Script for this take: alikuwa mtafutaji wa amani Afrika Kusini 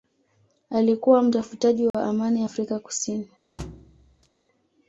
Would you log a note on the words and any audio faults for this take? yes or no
yes